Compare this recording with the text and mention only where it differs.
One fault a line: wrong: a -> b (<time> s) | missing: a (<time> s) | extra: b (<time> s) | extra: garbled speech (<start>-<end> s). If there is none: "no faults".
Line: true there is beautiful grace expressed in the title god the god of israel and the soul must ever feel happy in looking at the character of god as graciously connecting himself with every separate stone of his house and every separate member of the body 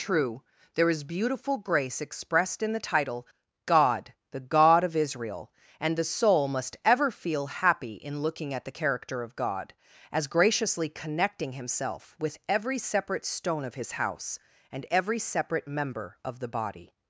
no faults